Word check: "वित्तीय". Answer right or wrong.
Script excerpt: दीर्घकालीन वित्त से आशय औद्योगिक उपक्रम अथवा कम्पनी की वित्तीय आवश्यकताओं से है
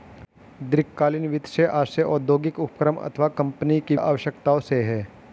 wrong